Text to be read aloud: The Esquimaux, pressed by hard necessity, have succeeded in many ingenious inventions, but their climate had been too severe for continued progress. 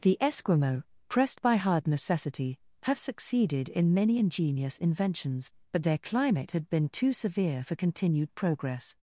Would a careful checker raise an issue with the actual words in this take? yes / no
no